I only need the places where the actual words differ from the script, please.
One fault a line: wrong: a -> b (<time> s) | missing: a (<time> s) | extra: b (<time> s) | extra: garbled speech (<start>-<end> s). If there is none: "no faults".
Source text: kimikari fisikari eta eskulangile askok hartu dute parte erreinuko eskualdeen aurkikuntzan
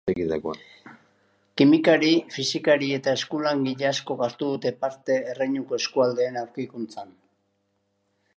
no faults